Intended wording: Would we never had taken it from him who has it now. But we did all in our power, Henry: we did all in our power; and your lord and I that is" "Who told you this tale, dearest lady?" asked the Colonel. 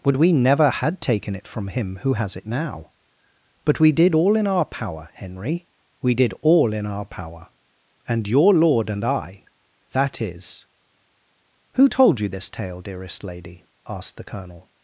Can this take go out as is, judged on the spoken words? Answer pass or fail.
pass